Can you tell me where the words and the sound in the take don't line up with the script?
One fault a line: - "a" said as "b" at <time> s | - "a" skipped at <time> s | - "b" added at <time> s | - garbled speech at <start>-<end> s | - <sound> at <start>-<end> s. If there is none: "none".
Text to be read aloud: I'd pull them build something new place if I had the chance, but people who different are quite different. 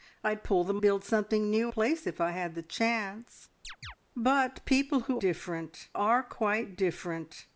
- chirp at 3.6-4.0 s